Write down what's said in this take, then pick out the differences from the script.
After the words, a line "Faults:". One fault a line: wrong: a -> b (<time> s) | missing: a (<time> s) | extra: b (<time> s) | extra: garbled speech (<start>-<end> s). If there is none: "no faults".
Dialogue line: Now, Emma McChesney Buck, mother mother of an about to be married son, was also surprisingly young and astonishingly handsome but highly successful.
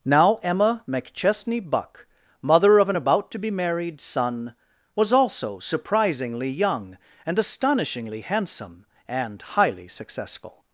Now, Emma McChesney Buck, mother of an about to be married son, was also surprisingly young and astonishingly handsome and highly successful.
Faults:
missing: mother (2.8 s)
wrong: but -> and (9.1 s)